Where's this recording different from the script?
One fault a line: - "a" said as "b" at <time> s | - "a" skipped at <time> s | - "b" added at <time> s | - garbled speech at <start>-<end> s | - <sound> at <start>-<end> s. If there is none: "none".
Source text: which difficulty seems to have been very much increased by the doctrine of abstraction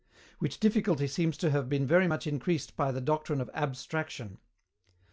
none